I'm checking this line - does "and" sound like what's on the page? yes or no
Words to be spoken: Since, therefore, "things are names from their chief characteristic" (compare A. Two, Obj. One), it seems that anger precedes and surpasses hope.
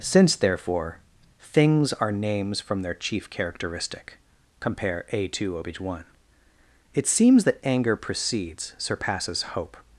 no